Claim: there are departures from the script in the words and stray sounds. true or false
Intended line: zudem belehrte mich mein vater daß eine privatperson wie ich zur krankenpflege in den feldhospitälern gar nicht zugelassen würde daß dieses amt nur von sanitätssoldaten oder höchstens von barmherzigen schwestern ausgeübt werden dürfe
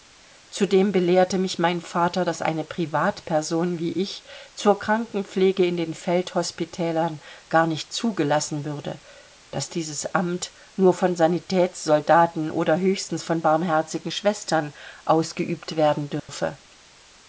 true